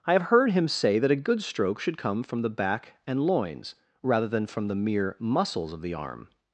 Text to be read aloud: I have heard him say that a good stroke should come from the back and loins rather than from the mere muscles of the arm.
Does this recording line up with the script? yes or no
yes